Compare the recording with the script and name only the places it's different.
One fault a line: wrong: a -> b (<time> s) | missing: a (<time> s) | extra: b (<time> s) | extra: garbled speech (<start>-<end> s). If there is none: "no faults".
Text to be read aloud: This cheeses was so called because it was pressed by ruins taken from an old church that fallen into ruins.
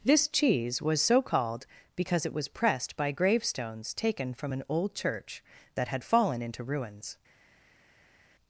wrong: cheeses -> cheese (0.3 s)
wrong: ruins -> gravestones (3.1 s)
extra: had (5.9 s)